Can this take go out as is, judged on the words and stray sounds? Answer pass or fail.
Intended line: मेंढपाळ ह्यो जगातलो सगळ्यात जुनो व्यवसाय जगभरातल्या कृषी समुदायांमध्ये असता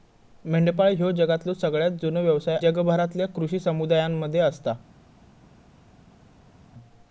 pass